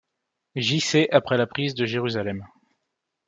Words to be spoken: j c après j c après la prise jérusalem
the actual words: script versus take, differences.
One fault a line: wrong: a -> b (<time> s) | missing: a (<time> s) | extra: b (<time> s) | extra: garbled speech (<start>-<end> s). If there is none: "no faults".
missing: j c après (1.4 s)
extra: de (1.8 s)